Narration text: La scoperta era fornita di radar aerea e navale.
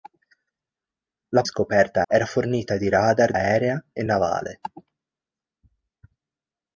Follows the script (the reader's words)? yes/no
yes